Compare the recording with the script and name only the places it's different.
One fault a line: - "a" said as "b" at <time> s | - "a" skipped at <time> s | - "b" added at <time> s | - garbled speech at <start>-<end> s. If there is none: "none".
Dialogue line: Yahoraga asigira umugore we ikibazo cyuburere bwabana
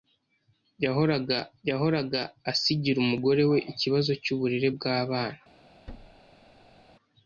- "yahoraga" added at 1.7 s